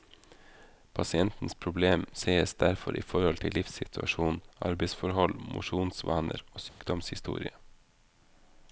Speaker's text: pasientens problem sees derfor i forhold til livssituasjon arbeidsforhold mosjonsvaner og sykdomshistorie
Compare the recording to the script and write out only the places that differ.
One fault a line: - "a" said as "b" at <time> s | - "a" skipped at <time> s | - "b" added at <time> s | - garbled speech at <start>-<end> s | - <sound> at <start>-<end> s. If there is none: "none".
- dropout at 6.7-6.8 s